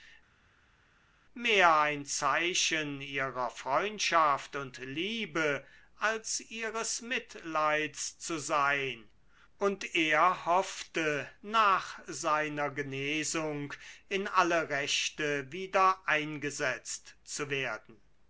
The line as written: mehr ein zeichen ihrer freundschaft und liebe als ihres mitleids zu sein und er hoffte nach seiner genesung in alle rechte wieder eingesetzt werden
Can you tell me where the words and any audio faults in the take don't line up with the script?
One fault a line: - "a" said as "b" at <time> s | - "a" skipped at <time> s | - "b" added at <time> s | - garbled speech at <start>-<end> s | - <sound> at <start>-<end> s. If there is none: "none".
- "zu" added at 17.2 s